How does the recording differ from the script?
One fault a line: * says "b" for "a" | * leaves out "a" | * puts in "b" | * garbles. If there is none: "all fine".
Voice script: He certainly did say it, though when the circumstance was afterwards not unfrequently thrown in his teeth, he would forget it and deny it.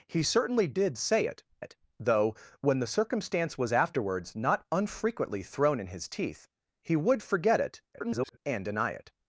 * puts in "it"
* garbles